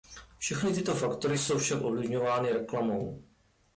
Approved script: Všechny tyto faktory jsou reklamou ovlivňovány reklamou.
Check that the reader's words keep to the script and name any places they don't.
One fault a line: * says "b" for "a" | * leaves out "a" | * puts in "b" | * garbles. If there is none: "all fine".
* says "však" for "reklamou"